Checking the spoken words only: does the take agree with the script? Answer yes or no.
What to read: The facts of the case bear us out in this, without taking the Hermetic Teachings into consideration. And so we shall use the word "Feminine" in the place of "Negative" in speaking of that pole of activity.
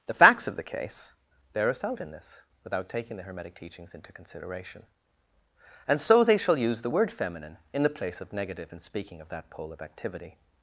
no